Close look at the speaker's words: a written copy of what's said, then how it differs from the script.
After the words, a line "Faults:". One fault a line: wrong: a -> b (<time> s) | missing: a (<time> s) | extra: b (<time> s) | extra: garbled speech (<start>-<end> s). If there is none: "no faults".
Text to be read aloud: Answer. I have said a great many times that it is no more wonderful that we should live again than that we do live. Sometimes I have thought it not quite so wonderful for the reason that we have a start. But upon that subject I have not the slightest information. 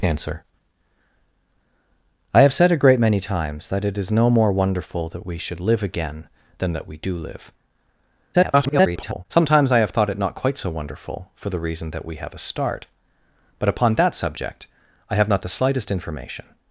Answer. I have said a great many times that it is no more wonderful that we should live again than that we do live. [garbled] Sometimes I have thought it not quite so wonderful for the reason that we have a start. But upon that subject I have not the slightest information.
Faults:
extra: garbled speech (8.3-9.3 s)